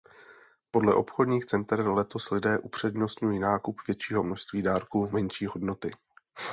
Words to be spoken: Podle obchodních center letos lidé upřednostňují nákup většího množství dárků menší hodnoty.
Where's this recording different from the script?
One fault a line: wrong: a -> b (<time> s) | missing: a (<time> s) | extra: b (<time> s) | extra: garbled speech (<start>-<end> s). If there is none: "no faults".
no faults